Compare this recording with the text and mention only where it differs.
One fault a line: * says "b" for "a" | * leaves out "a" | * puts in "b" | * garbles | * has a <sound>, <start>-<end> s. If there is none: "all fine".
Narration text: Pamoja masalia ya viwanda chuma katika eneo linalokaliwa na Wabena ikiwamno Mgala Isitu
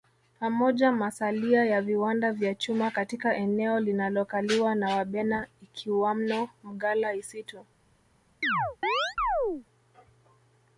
* puts in "vya"
* has a chirp, 8.4-9.7 s